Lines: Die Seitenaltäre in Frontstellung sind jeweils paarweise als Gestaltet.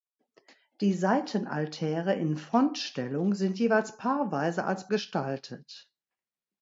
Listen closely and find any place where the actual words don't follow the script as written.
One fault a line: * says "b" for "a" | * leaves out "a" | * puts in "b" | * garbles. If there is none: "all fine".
all fine